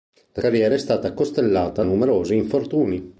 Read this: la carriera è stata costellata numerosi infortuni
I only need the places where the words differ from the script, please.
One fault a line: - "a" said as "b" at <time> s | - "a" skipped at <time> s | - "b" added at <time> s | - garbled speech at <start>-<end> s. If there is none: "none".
none